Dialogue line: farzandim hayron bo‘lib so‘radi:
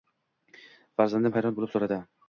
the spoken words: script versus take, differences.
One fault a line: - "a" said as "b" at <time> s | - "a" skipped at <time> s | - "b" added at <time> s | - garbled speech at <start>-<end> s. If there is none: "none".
none